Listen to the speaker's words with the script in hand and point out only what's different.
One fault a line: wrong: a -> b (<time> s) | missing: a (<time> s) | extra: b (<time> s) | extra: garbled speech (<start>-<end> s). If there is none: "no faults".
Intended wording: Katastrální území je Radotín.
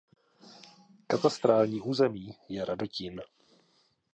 no faults